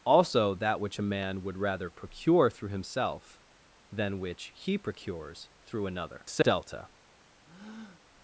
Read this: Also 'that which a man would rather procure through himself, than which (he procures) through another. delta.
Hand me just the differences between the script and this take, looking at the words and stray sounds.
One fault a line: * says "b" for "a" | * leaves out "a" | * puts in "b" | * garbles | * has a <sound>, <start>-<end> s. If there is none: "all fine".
* has a breath, 7.5-8.0 s